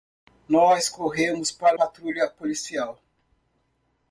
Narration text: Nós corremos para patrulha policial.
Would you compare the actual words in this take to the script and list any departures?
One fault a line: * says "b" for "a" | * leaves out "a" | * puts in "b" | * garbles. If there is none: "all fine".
all fine